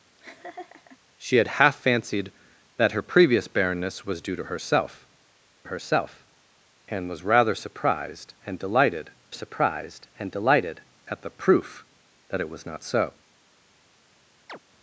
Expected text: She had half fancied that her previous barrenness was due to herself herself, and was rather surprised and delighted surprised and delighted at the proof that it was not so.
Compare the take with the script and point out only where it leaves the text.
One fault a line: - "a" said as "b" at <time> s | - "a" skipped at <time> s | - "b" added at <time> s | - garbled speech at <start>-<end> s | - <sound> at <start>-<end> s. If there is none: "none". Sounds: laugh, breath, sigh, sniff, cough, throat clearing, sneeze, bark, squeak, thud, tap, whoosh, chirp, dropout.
- laugh at 0.2-1.0 s
- chirp at 14.5-14.6 s